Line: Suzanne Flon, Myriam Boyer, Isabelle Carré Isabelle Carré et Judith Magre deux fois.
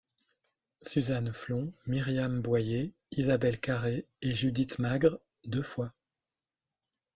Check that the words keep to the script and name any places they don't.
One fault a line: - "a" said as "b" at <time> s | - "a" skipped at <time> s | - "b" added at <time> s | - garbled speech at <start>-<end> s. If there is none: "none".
- "Isabelle Carré" skipped at 4.1 s